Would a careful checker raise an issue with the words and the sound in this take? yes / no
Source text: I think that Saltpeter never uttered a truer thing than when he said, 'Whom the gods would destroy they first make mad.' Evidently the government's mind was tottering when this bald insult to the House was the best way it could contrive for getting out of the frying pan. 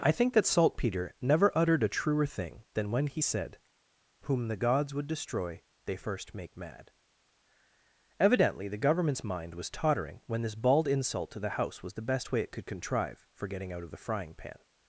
no